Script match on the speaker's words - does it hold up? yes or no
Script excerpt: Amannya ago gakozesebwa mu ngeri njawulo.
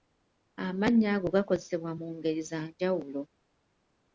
no